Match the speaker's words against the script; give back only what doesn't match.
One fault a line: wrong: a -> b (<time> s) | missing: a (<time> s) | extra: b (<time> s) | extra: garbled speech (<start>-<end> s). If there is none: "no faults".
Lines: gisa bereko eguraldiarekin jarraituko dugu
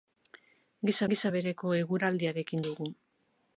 extra: gisa (1.1 s)
missing: jarraituko (2.6 s)